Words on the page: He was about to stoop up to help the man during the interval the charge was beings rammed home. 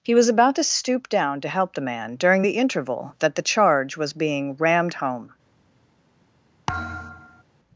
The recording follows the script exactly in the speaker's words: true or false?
false